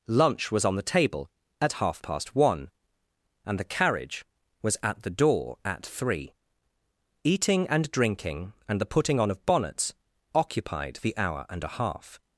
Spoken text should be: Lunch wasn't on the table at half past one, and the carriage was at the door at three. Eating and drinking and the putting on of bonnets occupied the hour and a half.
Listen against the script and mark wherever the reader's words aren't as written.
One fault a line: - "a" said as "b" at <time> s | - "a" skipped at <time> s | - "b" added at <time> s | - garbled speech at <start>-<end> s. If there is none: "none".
- "wasn't" said as "was" at 0.5 s